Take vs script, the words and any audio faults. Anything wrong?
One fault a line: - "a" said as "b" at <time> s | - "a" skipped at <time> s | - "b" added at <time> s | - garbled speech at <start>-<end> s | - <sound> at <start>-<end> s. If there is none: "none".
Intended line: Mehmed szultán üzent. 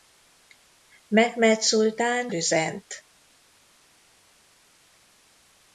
none